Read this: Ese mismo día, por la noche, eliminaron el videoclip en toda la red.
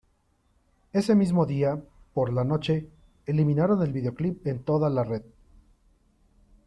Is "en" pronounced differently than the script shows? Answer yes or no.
no